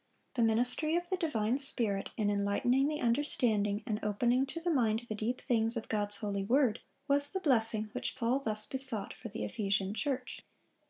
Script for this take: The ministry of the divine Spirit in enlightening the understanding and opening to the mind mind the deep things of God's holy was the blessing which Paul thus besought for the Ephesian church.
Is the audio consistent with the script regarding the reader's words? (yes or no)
no